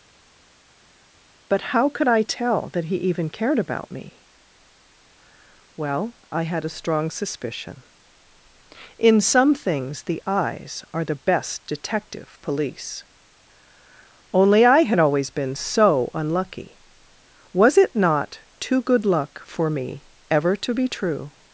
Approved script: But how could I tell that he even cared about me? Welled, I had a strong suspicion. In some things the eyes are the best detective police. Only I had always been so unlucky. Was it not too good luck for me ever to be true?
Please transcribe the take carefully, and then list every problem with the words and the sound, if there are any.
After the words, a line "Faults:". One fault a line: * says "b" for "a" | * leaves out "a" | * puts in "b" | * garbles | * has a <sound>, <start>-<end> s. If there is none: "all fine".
But how could I tell that he even cared about me? Well, I had a strong suspicion. In some things the eyes are the best detective police. Only I had always been so unlucky. Was it not too good luck for me ever to be true?
Faults:
* says "Well" for "Welled"